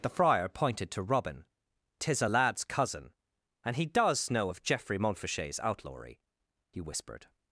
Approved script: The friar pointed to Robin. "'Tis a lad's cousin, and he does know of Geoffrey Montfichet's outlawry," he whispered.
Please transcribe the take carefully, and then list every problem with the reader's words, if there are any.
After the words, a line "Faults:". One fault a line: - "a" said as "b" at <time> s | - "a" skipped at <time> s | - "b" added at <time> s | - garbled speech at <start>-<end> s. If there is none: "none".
The friar pointed to Robin. "'Tis a lad's cousin, and he does know of Geoffrey Montfichet's outlawry," he whispered.
Faults:
none